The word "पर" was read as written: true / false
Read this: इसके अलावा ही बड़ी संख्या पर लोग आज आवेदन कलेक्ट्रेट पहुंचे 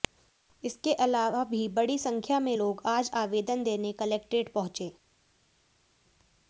false